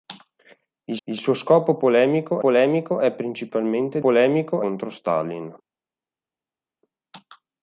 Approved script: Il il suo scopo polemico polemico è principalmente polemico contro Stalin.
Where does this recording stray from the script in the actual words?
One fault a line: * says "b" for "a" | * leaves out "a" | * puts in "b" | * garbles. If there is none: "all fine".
all fine